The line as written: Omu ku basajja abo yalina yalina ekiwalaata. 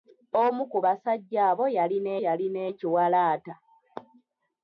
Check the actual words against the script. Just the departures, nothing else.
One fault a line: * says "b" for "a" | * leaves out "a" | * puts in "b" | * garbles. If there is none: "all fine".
all fine